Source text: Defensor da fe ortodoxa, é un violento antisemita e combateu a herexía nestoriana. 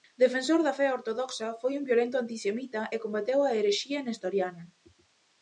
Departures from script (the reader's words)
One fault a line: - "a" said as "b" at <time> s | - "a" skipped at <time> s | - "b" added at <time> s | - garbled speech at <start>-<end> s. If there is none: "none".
- "é" said as "foi" at 1.6 s